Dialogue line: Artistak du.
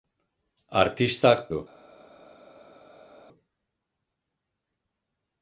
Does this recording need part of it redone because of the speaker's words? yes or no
no